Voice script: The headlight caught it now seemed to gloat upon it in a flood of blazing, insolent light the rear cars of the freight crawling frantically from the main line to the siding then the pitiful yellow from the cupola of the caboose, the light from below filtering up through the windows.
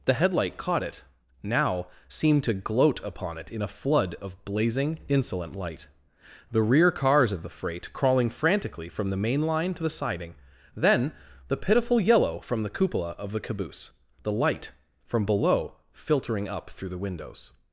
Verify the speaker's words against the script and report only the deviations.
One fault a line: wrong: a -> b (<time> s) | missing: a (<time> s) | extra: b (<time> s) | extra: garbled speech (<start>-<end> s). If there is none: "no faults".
no faults